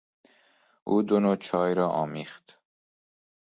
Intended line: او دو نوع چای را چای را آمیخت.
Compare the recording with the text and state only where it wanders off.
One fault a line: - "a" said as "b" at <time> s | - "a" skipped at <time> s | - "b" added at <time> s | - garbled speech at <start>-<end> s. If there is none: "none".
- "چای را" skipped at 1.9 s